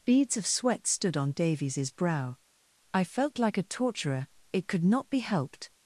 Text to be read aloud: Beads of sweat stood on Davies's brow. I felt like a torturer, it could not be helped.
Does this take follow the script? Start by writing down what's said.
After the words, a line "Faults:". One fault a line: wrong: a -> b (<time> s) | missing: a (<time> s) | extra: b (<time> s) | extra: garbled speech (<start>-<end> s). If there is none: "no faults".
Beads of sweat stood on Davies's brow. I felt like a torturer, it could not be helped.
Faults:
no faults